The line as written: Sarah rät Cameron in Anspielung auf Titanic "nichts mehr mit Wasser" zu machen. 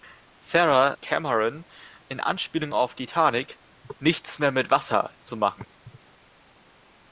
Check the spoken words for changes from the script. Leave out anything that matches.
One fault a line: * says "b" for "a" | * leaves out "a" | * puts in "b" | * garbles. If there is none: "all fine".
* leaves out "rät"